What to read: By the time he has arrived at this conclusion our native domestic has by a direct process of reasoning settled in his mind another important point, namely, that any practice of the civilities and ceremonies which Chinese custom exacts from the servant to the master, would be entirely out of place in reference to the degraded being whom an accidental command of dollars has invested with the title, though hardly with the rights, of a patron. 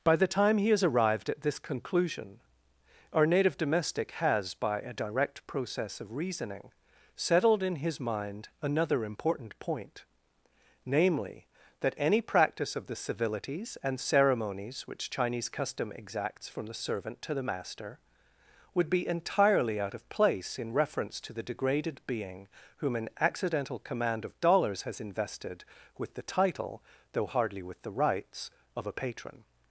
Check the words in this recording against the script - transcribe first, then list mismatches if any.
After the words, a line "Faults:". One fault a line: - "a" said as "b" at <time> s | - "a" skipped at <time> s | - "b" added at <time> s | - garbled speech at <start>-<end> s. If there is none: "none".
By the time he has arrived at this conclusion our native domestic has by a direct process of reasoning settled in his mind another important point, namely, that any practice of the civilities and ceremonies which Chinese custom exacts from the servant to the master, would be entirely out of place in reference to the degraded being whom an accidental command of dollars has invested with the title, though hardly with the rights, of a patron.
Faults:
none